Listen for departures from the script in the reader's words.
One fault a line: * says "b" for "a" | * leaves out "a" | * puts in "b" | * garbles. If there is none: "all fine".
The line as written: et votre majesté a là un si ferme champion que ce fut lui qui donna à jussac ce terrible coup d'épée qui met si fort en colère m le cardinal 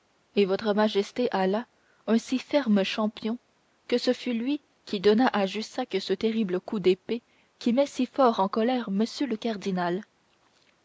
all fine